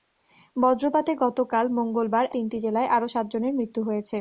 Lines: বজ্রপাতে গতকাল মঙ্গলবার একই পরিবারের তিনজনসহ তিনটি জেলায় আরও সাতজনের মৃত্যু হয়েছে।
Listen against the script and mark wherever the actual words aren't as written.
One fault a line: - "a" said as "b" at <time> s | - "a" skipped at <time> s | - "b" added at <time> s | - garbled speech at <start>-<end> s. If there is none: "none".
- "একই পরিবারের তিনজনসহ" skipped at 2.2 s